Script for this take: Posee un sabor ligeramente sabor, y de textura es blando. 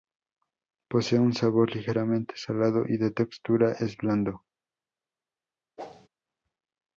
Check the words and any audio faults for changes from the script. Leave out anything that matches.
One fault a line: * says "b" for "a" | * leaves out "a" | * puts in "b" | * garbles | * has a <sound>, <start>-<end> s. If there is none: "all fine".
* says "salado" for "sabor"
* has a whoosh, 5.8-6.1 s